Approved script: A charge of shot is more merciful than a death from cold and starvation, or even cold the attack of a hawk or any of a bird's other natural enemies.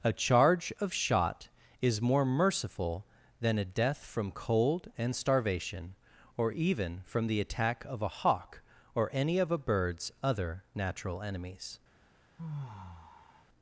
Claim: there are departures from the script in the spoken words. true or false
true